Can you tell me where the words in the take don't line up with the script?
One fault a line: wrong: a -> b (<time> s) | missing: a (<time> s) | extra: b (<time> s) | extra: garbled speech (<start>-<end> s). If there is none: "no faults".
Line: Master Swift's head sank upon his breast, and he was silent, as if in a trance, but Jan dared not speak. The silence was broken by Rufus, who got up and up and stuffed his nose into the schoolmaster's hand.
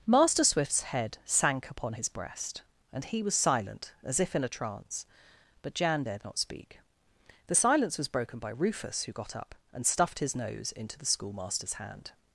missing: up and (9.8 s)